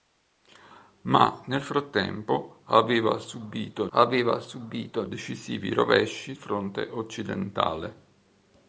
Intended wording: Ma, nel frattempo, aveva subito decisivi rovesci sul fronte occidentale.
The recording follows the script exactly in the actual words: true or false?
false